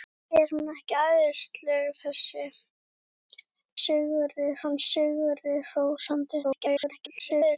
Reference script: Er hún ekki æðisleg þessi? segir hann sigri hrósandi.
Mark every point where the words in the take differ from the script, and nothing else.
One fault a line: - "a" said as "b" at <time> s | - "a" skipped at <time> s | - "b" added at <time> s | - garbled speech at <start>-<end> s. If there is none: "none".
- "segir" said as "sigri" at 3.8 s
- garbled speech at 6.4-7.6 s